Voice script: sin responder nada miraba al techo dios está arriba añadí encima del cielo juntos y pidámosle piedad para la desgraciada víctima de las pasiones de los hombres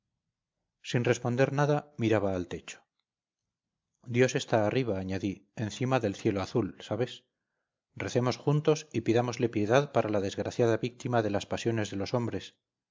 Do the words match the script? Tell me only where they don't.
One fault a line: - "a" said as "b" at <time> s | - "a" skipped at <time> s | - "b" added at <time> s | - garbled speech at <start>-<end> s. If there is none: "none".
- "azul sabes recemos" added at 6.4 s